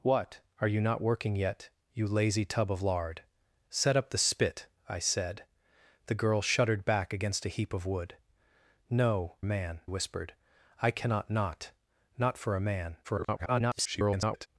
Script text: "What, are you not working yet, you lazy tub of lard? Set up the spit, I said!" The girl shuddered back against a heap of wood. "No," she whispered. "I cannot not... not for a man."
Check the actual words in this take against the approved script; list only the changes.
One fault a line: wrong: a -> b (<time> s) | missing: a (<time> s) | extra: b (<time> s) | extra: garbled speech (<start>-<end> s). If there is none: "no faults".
wrong: she -> man (9.4 s)
extra: garbled speech (13.0-14.5 s)